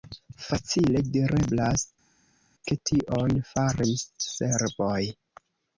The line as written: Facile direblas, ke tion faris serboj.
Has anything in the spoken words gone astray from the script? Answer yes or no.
no